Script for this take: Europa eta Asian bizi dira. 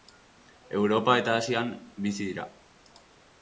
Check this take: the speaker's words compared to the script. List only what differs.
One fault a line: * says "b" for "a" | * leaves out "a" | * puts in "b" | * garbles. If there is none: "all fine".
all fine